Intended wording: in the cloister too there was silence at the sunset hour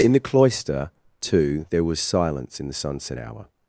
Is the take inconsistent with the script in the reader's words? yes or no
yes